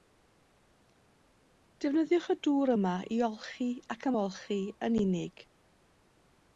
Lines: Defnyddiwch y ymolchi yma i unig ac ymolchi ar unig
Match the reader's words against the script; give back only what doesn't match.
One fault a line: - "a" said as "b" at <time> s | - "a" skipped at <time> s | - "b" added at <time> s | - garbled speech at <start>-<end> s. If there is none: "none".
- "ymolchi" said as "dŵr" at 2.5 s
- "unig" said as "olchi" at 3.3 s
- "ar" said as "yn" at 4.9 s